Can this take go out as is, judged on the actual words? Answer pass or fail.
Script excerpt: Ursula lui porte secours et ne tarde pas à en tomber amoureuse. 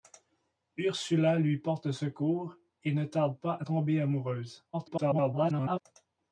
fail